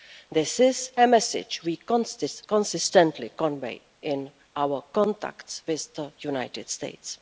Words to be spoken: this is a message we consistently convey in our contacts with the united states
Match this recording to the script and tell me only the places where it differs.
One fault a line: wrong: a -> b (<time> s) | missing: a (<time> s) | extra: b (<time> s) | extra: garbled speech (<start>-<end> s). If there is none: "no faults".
no faults